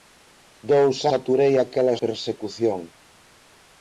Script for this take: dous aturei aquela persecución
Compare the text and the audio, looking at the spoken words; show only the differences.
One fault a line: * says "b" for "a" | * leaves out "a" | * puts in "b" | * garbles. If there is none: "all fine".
all fine